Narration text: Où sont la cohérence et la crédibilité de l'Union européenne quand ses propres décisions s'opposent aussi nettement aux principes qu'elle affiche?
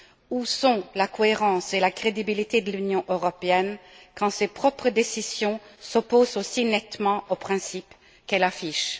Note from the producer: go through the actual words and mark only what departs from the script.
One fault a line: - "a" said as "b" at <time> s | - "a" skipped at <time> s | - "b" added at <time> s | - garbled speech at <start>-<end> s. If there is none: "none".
none